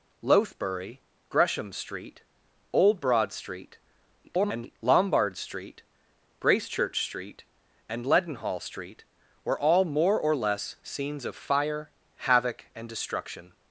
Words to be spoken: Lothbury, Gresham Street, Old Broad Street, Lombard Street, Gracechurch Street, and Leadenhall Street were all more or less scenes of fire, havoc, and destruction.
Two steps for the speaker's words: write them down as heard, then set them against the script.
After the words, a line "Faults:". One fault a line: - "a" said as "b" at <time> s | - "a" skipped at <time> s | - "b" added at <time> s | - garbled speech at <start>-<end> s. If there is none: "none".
Lothbury, Gresham Street, Old Broad Street, [garbled] Lombard Street, Gracechurch Street, and Leadenhall Street were all more or less scenes of fire, havoc, and destruction.
Faults:
- garbled speech at 4.2-4.8 s